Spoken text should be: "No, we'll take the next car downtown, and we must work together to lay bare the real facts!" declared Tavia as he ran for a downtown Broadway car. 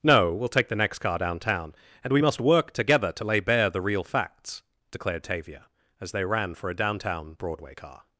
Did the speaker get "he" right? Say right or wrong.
wrong